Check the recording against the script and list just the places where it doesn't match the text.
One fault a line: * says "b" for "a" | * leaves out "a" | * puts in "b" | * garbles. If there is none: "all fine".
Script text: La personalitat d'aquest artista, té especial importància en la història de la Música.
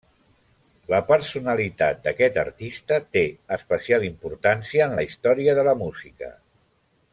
all fine